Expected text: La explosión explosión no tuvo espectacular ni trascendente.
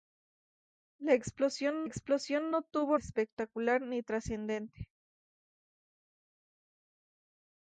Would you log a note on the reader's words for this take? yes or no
no